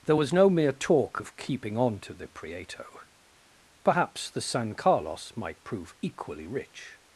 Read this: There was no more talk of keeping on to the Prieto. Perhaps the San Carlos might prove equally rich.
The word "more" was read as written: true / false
false